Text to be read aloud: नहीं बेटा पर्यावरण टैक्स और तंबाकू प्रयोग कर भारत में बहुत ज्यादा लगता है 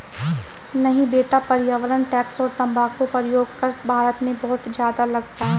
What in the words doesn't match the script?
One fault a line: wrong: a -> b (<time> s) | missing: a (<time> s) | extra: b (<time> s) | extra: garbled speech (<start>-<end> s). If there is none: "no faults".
no faults